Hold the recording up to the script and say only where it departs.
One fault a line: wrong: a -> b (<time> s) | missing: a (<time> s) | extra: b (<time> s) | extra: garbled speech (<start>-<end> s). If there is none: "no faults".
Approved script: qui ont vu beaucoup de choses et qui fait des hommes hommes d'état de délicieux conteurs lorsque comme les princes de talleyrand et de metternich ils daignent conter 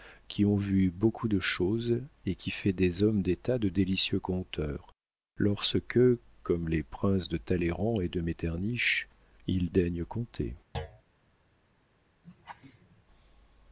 missing: hommes (3.2 s)